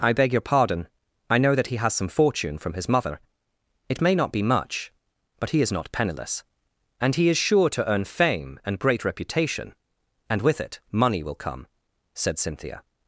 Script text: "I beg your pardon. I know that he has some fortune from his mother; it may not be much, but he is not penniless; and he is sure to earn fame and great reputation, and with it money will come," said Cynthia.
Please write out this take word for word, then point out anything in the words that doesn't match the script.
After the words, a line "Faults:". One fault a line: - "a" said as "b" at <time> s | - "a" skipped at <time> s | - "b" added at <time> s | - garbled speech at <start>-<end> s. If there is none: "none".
"I beg your pardon. I know that he has some fortune from his mother; it may not be much, but he is not penniless; and he is sure to earn fame and great reputation, and with it money will come," said Cynthia.
Faults:
none